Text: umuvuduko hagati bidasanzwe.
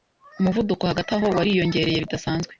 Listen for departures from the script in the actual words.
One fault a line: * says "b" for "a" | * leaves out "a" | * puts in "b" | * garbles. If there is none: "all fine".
* puts in "aho wariyongereye"